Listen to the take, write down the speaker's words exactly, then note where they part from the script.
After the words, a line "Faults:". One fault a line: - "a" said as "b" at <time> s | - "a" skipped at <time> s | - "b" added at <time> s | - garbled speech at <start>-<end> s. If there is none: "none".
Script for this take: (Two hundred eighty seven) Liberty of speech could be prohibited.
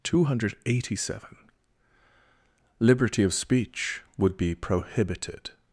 (Two hundred eighty seven) Liberty of speech would be prohibited.
Faults:
- "could" said as "would" at 4.2 s